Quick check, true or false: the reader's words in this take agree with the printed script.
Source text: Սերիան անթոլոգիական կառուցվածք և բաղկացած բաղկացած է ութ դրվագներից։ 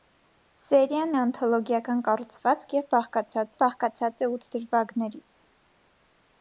true